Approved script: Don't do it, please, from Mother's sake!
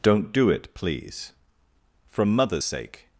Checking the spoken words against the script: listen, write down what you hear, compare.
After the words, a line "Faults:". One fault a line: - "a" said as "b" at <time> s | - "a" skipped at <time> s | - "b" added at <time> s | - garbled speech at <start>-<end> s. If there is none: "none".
Don't do it, please, from Mother's sake!
Faults:
none